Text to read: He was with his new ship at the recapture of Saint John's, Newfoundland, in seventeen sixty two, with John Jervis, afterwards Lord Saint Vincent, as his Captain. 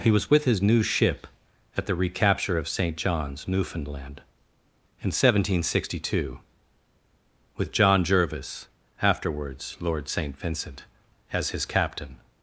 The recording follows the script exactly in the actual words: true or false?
true